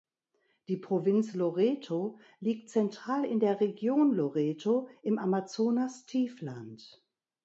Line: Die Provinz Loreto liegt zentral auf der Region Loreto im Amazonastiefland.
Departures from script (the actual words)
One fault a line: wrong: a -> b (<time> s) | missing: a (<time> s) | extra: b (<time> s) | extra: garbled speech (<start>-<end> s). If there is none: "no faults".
wrong: auf -> in (3.3 s)